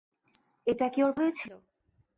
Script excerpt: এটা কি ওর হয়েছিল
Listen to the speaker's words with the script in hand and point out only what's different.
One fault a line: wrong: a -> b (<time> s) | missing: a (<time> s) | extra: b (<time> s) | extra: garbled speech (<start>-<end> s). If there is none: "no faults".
no faults